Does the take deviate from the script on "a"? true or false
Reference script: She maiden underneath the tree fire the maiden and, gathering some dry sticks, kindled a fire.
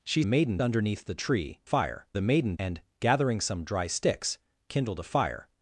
false